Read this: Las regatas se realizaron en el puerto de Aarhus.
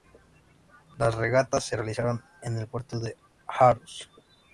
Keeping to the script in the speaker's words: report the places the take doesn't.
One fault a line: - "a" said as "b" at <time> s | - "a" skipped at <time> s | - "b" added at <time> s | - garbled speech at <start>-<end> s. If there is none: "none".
none